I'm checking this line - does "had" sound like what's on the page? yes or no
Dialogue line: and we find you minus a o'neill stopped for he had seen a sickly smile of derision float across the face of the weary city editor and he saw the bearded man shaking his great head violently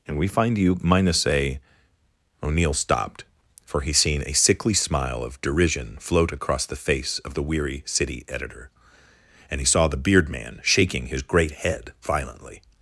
no